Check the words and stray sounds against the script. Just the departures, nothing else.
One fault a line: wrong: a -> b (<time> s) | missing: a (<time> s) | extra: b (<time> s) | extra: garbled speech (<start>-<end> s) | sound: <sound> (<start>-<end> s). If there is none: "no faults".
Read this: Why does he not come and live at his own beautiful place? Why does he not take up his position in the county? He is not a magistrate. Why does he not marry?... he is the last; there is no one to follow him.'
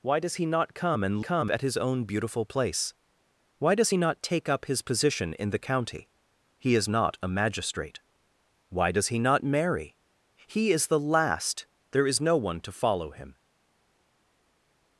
wrong: live -> come (1.2 s)